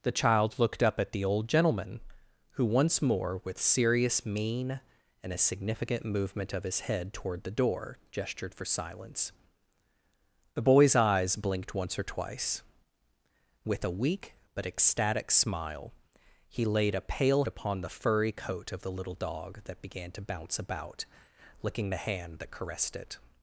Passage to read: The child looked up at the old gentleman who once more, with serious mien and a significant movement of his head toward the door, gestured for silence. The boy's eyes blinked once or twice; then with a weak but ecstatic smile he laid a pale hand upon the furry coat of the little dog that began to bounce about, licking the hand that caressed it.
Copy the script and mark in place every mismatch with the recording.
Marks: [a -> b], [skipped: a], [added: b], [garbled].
The child looked up at the old gentleman who once more, with serious mien and a significant movement of his head toward the door, gestured for silence. The boy's eyes blinked once or twice; [skipped: then] with a weak but ecstatic smile he laid a pale [skipped: hand] upon the furry coat of the little dog that began to bounce about, licking the hand that caressed it.